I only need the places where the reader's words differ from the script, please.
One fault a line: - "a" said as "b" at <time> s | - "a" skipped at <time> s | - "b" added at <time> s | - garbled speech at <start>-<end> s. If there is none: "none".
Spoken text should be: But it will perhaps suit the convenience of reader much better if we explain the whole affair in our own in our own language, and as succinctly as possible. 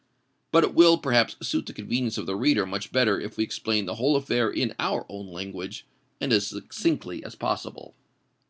- "the" added at 2.2 s
- "in our own" skipped at 5.3 s